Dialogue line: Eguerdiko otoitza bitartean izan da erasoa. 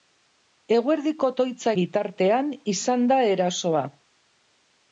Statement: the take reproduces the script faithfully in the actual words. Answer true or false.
true